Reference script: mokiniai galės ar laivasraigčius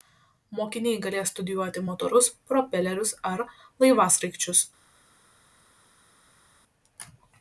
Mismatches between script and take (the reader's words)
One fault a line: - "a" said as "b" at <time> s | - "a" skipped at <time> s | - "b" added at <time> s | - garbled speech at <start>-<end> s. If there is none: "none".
- "studijuoti motorus propelerius" added at 1.3 s